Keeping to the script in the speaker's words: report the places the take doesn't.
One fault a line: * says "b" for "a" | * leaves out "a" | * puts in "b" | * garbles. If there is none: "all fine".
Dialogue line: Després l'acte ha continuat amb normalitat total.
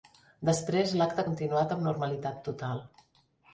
all fine